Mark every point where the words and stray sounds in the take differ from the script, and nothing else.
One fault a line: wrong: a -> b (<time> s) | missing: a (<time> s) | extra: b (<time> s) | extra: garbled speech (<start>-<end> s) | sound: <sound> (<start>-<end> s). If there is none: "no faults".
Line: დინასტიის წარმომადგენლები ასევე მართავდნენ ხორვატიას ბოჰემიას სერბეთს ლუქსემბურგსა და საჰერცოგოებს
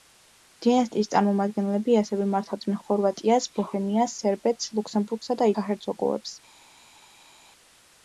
no faults